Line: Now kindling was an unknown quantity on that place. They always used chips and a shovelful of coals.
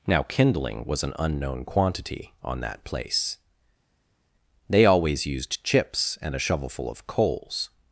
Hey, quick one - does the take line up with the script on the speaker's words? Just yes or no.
yes